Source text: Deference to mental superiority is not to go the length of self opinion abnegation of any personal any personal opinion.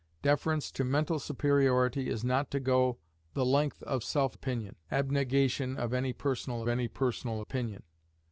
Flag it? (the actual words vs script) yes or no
no